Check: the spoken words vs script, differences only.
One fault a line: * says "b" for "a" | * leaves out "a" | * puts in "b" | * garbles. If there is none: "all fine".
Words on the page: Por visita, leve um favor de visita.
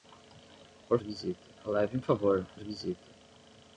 all fine